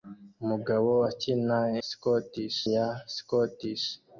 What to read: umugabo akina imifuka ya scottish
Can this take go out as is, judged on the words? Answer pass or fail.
fail